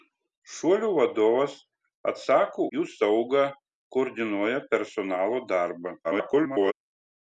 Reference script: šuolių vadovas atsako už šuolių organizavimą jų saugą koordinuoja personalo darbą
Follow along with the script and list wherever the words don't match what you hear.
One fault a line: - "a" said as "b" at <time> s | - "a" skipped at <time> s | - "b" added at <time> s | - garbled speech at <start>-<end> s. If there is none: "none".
- "už šuolių organizavimą" skipped at 2.6 s
- garbled speech at 6.0-6.7 s